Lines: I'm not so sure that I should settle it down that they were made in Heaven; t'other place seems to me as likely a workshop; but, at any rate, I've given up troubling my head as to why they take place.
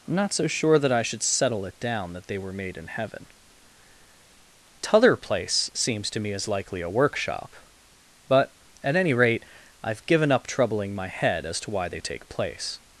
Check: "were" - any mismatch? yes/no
no